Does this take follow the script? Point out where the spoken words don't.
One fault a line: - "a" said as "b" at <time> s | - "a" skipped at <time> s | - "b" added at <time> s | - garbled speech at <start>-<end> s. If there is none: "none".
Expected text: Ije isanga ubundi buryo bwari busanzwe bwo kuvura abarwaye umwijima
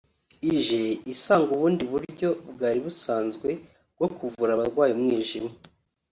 none